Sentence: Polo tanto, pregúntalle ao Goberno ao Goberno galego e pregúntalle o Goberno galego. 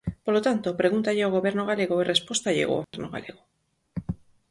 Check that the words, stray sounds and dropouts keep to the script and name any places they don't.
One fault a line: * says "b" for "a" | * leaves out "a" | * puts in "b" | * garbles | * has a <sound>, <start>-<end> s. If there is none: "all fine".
* leaves out "ao Goberno"
* says "respóstalle" for "pregúntalle"
* has a dropout, 2.8-2.9 s